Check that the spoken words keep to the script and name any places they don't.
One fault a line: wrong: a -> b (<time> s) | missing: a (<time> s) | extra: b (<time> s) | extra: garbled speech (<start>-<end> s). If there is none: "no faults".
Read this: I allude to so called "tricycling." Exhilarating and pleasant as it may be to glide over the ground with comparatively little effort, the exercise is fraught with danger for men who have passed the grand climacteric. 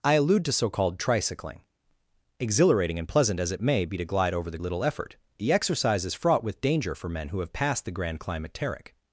missing: ground with comparatively (4.6 s)